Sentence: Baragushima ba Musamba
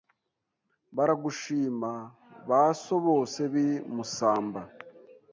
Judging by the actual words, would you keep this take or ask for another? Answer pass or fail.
fail